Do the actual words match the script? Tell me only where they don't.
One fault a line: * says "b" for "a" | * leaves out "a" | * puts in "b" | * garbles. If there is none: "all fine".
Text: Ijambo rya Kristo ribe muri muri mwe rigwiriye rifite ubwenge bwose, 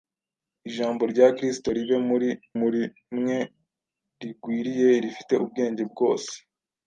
all fine